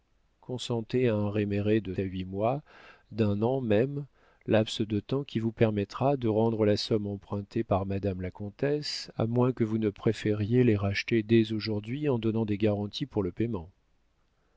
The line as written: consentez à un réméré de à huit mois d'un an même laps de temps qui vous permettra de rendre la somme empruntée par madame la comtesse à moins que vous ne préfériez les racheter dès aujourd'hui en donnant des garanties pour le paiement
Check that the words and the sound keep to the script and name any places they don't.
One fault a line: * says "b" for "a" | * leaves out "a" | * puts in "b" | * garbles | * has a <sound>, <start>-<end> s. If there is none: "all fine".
all fine